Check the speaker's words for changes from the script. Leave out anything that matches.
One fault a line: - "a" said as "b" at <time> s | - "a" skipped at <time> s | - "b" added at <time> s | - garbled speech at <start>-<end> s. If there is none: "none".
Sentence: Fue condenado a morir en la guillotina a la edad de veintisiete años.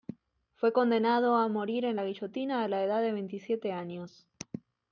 none